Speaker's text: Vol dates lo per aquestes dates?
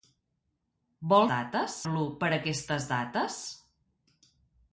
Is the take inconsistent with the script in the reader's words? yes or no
no